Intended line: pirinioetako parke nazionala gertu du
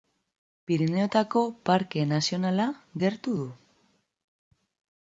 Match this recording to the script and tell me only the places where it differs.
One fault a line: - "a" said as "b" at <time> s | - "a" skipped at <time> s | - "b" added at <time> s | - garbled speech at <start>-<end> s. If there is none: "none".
none